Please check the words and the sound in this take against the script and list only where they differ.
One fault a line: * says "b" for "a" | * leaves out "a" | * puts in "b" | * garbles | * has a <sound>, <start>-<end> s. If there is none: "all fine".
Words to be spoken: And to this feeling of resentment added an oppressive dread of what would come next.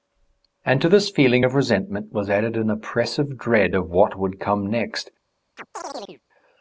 * puts in "was"
* has a chirp, 5.6-6.2 s